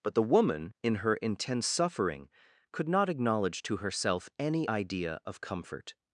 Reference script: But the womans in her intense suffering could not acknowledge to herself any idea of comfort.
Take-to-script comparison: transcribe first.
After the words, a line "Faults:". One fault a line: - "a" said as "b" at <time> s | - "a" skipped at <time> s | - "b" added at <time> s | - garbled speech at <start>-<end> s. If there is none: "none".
But the woman in her intense suffering could not acknowledge to herself any idea of comfort.
Faults:
- "womans" said as "woman" at 0.2 s